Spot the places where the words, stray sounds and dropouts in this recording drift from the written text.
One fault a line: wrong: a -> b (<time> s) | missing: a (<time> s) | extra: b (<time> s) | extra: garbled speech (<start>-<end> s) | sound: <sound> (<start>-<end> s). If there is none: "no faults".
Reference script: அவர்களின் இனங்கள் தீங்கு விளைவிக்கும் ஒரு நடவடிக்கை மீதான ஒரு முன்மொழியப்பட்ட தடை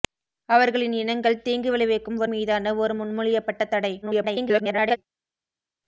missing: நடவடிக்கை (2.3 s)
extra: garbled speech (4.0-5.0 s)